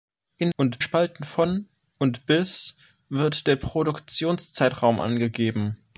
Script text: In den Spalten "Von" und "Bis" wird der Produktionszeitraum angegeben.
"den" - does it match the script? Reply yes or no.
no